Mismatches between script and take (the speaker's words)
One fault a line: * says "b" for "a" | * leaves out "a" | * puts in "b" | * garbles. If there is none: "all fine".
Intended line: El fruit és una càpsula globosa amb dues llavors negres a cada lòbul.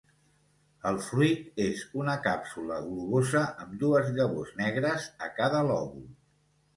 all fine